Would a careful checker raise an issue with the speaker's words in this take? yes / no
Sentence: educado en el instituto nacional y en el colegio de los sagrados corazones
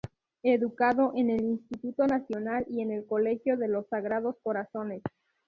no